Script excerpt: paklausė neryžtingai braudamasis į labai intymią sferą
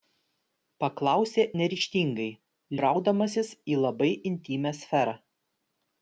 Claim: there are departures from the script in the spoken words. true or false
false